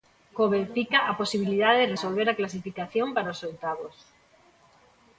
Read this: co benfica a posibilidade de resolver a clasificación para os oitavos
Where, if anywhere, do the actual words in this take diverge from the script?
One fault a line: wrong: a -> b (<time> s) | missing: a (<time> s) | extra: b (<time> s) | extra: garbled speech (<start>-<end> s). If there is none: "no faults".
no faults